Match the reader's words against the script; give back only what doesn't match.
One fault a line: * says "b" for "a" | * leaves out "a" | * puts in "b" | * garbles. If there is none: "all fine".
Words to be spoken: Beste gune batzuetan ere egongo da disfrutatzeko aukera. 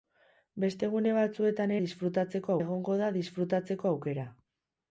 * says "disfrutatzeko" for "ere"